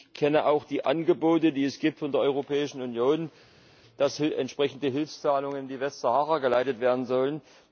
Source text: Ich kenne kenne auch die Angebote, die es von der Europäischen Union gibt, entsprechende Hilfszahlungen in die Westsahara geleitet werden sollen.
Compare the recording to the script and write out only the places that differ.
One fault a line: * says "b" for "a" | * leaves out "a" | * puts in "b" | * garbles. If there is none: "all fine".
* leaves out "kenne"
* puts in "dass"